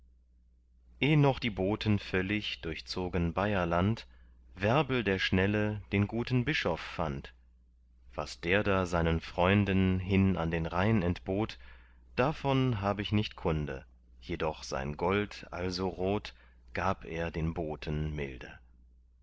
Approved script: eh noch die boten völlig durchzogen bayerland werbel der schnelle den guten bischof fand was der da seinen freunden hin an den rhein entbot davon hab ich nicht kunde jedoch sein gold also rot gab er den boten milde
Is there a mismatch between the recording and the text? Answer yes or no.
no